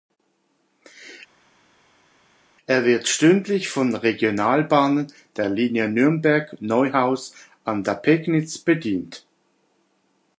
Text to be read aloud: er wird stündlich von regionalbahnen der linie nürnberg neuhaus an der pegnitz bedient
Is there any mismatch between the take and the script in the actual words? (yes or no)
no